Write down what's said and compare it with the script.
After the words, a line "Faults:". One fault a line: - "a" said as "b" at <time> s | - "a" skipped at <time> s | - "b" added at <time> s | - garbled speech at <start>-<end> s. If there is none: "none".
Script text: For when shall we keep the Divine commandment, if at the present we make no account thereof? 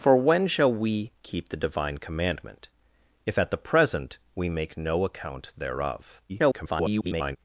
For when shall we keep the Divine commandment, if at the present we make no account thereof? [garbled]
Faults:
- garbled speech at 6.3-7.4 s